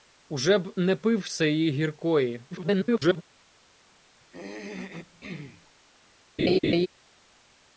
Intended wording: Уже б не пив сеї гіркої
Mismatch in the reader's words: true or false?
true